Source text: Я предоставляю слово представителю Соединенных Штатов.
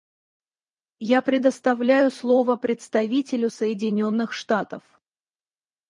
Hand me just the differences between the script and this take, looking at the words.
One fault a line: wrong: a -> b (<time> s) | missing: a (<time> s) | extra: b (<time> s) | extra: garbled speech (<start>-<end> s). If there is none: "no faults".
no faults